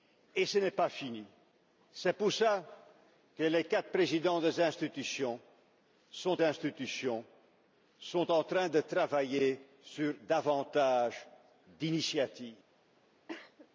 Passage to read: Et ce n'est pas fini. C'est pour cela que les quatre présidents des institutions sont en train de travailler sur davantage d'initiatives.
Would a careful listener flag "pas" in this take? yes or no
no